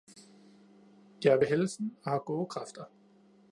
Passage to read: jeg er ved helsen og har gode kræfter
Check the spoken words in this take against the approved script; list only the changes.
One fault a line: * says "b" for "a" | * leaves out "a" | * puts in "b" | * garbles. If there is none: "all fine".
all fine